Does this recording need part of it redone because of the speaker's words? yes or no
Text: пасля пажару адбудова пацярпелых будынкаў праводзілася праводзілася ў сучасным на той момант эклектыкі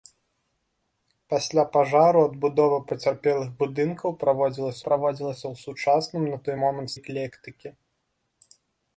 no